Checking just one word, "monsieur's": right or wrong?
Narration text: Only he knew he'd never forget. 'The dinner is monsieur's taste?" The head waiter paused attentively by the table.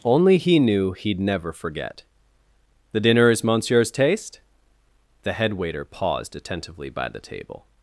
right